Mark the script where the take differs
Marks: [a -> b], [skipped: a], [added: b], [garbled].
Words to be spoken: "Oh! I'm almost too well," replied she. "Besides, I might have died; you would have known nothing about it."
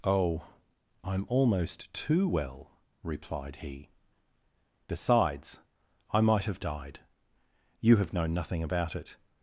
"Oh! I'm almost too well," replied [she. -> he] "Besides, I might have died; you [skipped: would] have known nothing about it."